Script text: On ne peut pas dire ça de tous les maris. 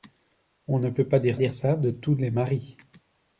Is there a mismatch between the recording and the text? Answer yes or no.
yes